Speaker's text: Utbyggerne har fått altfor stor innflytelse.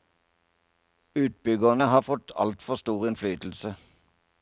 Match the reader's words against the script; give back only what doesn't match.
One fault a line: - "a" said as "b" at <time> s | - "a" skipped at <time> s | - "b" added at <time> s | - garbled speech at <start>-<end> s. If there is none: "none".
none